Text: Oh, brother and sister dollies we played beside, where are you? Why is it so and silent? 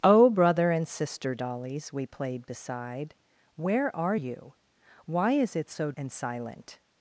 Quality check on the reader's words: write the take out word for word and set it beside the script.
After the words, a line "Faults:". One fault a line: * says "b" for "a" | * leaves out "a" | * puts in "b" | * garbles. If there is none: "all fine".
Oh, brother and sister dollies we played beside, where are you? Why is it so and silent?
Faults:
all fine